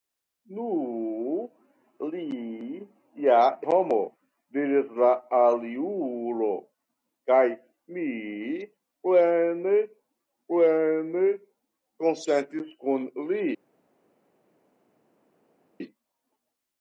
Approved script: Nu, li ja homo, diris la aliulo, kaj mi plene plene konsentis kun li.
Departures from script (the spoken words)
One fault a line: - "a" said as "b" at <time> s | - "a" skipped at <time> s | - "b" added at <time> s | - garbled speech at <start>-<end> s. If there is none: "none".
none